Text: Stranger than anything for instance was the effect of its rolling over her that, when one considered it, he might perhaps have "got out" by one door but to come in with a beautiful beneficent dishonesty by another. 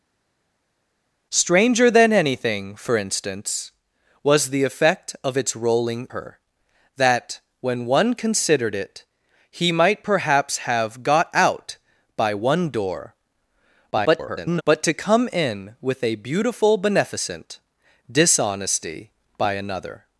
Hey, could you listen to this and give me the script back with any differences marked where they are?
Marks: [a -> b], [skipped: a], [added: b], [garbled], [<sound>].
Stranger than anything for instance was the effect of its rolling [skipped: over] her that, when one considered it, he might perhaps have "got out" by one door [garbled] but to come in with a beautiful beneficent dishonesty by another.